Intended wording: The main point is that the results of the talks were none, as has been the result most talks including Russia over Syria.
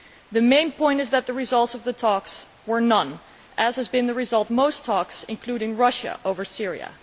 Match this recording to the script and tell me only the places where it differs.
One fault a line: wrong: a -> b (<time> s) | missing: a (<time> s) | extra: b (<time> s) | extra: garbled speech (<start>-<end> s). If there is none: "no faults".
no faults